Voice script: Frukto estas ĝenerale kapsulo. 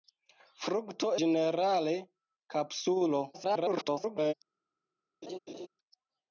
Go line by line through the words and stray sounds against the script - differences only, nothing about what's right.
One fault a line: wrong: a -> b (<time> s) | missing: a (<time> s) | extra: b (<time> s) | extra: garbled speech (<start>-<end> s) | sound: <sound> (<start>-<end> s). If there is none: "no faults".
missing: estas (1.1 s)
extra: garbled speech (3.3-4.3 s)
sound: laugh (5.2-5.7 s)